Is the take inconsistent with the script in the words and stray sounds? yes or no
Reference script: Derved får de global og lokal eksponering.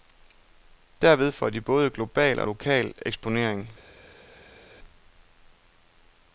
yes